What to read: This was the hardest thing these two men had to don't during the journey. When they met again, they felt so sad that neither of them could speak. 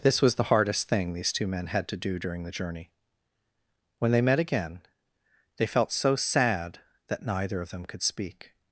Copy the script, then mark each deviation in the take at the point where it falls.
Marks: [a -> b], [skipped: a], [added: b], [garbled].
This was the hardest thing these two men had to [don't -> do] during the journey. When they met again, they felt so sad that neither of them could speak.